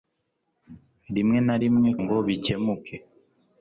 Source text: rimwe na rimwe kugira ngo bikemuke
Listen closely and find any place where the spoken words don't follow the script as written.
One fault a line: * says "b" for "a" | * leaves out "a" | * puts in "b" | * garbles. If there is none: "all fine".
* leaves out "kugira"